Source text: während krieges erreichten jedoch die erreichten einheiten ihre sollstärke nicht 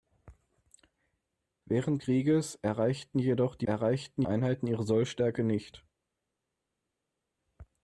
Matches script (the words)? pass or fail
pass